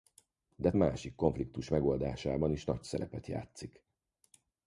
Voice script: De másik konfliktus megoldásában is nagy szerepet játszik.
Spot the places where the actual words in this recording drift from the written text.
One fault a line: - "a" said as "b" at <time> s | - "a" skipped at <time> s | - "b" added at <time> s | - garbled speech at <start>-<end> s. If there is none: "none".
none